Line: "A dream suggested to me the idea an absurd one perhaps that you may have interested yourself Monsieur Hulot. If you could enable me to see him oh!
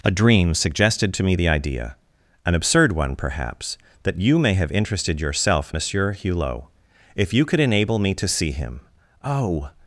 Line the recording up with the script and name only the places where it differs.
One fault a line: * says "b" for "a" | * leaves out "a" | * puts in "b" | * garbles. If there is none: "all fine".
all fine